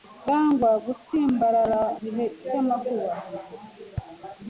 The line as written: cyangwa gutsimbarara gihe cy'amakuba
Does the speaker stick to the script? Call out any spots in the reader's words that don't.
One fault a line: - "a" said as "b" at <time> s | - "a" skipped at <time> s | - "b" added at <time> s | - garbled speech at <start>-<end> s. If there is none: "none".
none